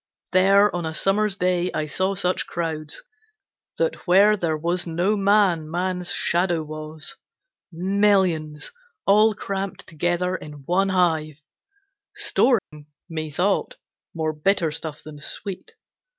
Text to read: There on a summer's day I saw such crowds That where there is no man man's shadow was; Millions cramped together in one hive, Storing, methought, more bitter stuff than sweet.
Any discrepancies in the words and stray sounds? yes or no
yes